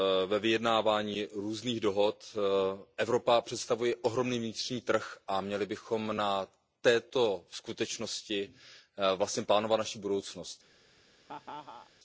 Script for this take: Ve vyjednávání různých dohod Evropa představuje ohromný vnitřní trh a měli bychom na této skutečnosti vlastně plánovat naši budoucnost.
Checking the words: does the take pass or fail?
pass